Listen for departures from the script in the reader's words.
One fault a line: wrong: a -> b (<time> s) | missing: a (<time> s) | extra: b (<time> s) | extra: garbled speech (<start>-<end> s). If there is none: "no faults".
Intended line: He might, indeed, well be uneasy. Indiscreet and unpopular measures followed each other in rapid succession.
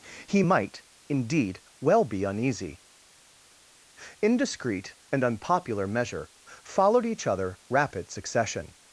wrong: measures -> measure (5.9 s)
missing: in (7.6 s)